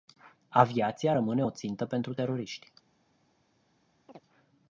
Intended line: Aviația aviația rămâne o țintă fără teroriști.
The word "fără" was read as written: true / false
false